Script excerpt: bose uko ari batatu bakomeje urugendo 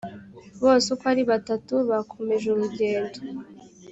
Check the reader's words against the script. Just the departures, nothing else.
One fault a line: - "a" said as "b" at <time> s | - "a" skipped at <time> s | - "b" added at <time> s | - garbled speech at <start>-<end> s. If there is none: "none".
none